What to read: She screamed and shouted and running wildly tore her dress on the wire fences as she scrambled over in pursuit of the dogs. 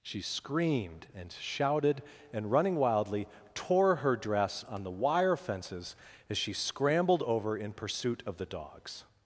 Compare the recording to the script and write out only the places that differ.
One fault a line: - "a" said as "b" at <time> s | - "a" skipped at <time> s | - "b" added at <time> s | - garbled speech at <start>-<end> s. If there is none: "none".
none